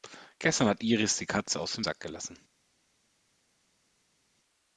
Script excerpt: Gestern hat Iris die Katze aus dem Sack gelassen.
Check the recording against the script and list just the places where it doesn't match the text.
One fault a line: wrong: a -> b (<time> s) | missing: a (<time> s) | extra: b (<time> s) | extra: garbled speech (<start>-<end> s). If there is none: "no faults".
no faults